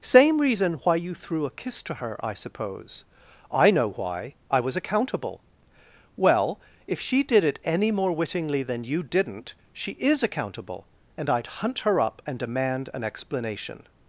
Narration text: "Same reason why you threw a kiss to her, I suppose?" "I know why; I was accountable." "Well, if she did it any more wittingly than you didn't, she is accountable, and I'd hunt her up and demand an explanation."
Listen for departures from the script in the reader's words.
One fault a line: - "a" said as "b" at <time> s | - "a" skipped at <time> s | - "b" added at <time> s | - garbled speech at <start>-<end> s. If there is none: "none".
none